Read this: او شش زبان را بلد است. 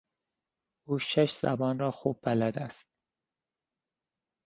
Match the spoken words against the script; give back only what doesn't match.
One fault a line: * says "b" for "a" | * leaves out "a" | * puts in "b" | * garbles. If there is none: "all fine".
* puts in "خوب"